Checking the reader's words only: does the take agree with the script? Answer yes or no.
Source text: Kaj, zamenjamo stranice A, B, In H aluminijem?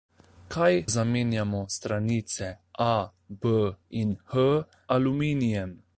yes